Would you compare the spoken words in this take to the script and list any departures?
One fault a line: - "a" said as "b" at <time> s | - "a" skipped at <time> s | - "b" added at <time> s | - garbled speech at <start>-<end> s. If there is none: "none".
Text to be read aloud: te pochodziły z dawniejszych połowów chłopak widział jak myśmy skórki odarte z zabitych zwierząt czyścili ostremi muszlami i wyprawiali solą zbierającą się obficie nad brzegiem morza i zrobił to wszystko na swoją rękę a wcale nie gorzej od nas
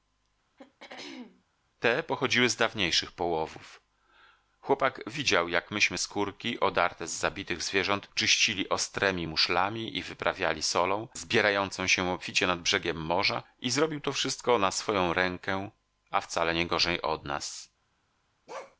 none